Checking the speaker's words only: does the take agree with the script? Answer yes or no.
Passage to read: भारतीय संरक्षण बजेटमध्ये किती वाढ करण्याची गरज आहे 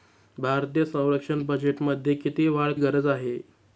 no